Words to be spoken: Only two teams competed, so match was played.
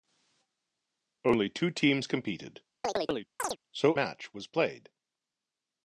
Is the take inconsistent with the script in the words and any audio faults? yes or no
yes